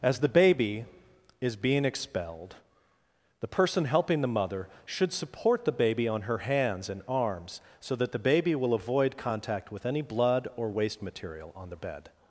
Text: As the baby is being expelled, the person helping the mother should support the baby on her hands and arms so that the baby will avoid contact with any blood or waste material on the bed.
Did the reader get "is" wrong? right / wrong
right